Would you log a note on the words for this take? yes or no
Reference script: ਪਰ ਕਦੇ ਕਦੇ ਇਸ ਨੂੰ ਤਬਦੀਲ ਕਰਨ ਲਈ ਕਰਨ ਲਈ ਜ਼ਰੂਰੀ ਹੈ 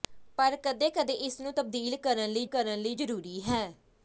no